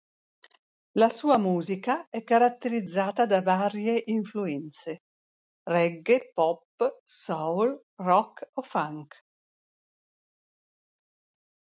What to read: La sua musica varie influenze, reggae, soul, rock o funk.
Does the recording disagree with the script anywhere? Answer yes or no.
yes